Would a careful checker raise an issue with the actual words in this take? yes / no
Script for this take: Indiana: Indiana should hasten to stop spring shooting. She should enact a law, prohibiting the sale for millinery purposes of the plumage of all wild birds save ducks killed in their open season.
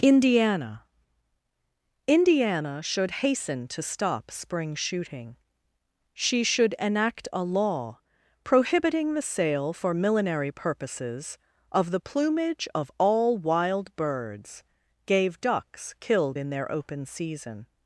yes